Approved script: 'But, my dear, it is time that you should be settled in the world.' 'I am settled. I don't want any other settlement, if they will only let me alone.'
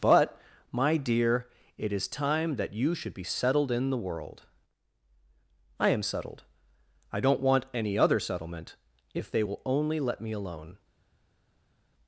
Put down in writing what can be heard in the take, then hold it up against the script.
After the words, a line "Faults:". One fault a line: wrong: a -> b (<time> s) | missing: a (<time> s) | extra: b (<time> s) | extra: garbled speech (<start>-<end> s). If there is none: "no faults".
'But, my dear, it is time that you should be settled in the world.' 'I am settled. I don't want any other settlement, if they will only let me alone.'
Faults:
no faults